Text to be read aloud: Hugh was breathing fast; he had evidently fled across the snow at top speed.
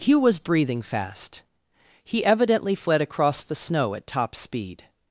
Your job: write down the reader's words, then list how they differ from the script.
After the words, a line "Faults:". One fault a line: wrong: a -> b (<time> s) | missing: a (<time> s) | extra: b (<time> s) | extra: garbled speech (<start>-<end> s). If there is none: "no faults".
Hugh was breathing fast; he evidently fled across the snow at top speed.
Faults:
missing: had (2.2 s)